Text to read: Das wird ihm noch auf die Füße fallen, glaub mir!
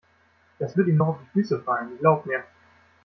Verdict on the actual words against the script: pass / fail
pass